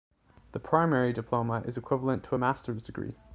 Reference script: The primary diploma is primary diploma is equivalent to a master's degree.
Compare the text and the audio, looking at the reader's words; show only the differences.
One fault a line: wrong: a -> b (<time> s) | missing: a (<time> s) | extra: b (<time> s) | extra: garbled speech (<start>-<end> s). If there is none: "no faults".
missing: primary diploma is (1.8 s)